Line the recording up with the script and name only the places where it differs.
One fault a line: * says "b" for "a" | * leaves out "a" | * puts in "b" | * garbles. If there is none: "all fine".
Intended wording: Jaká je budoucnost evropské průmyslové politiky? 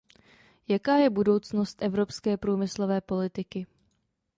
all fine